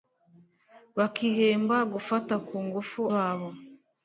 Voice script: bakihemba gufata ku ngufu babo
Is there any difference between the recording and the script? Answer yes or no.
no